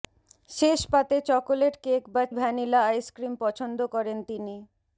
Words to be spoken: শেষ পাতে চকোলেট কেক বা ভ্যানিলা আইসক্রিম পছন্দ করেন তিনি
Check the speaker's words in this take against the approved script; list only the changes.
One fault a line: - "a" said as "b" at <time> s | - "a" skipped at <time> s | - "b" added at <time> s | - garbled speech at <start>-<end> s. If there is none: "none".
none